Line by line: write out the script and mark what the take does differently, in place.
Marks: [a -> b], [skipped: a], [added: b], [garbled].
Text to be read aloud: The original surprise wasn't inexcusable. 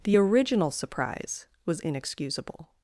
The original surprise [wasn't -> was] inexcusable.